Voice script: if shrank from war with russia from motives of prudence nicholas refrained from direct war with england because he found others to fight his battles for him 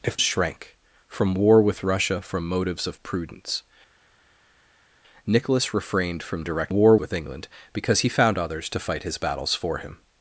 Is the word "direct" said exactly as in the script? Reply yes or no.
yes